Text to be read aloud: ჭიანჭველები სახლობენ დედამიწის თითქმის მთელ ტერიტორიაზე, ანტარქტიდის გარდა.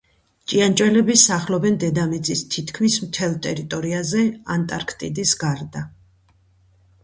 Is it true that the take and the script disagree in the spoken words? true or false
false